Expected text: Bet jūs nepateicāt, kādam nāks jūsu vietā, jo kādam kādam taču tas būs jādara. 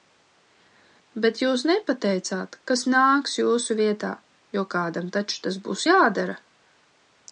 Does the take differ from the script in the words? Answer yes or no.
yes